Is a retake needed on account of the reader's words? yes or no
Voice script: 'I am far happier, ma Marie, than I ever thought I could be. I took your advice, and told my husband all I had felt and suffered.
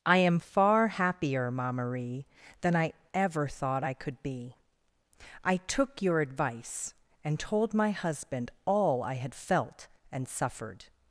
no